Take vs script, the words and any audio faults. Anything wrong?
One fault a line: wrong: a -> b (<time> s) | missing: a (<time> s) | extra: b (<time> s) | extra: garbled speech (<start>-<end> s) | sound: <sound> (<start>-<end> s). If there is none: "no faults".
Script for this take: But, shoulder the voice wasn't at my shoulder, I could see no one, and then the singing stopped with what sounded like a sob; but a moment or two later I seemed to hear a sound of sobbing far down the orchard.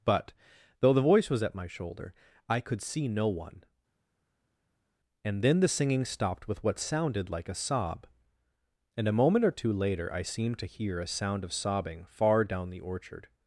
wrong: shoulder -> though (0.8 s)
wrong: wasn't -> was (1.3 s)
wrong: but -> and (9.0 s)